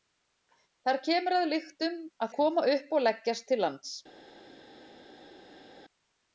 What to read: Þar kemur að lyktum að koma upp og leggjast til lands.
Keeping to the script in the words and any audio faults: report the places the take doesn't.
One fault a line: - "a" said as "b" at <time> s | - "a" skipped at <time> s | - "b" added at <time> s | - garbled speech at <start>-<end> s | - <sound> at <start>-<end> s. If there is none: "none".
none